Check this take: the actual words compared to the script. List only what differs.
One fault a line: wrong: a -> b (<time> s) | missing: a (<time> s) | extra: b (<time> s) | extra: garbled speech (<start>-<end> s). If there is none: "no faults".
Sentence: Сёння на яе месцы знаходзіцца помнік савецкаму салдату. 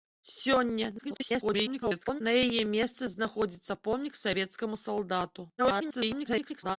extra: garbled speech (1.0-2.2 s)
extra: garbled speech (5.6-6.8 s)